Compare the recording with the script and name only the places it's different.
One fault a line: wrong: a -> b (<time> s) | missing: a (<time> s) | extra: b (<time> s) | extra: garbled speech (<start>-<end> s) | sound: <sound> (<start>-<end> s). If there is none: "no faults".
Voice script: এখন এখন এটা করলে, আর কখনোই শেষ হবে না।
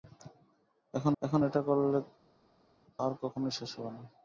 no faults